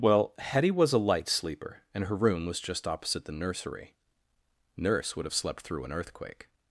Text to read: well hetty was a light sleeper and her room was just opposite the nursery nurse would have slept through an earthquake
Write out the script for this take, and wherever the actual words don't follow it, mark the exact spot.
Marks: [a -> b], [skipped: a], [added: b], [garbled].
well hetty was a light sleeper and her room was just opposite the nursery nurse would have slept through an earthquake